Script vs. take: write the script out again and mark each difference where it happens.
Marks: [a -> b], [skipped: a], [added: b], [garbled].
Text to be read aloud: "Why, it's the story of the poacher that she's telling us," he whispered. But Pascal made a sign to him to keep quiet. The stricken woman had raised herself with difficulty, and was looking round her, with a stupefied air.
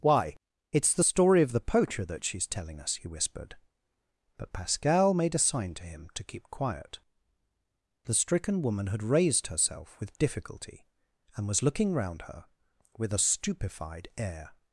"Why, it's the story of the poacher that she's telling us," he whispered. But Pascal made a sign to him to keep quiet. The stricken woman had raised herself with difficulty, and was looking round her, with a stupefied air.